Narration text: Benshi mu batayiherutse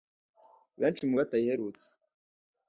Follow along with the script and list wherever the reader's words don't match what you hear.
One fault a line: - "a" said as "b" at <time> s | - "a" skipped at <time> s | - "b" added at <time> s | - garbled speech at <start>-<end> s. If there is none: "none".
none